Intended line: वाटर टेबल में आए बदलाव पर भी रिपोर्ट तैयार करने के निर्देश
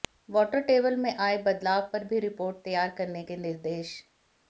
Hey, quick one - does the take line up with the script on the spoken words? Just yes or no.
yes